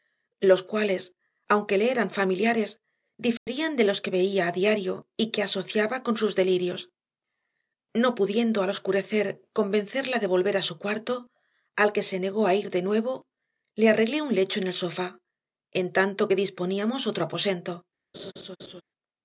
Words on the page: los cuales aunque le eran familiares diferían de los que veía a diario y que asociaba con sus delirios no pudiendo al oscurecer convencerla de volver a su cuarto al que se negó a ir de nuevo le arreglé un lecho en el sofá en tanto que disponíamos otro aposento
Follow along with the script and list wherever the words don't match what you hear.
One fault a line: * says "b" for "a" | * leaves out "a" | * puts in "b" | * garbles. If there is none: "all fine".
all fine